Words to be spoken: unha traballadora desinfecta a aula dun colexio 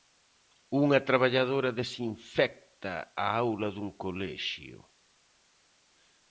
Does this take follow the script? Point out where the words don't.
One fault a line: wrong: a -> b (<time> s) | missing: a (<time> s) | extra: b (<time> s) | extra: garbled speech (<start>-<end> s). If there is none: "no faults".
no faults